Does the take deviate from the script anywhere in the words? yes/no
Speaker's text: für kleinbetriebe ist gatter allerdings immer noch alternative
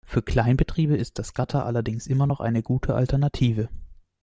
yes